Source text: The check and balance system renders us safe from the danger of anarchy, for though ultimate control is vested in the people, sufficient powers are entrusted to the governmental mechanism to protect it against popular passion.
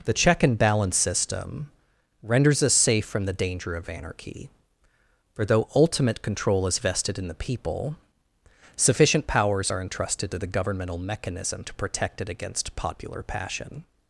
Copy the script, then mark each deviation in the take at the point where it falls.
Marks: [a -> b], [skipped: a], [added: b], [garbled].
The check and balance system renders us safe from the danger of anarchy, for though ultimate control is vested in the people, sufficient powers are entrusted to the governmental mechanism to protect it against popular passion.